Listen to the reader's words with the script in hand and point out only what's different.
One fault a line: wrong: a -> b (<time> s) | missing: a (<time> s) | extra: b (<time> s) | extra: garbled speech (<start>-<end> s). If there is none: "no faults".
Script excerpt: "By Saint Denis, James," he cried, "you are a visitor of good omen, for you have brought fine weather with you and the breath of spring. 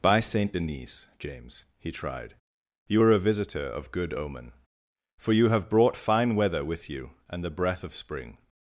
wrong: cried -> tried (1.9 s)